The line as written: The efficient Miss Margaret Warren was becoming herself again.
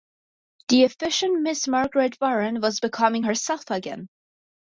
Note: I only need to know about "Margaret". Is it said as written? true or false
true